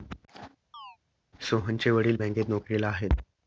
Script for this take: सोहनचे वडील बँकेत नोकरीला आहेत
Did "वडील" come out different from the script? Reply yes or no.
no